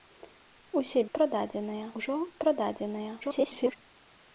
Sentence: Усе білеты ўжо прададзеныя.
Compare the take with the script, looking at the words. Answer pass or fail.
fail